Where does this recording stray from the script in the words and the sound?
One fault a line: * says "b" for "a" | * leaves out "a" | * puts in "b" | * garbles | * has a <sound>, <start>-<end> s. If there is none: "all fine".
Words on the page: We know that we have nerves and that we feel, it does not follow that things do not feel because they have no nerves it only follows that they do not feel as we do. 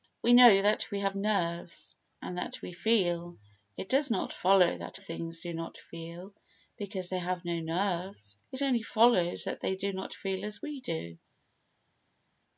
all fine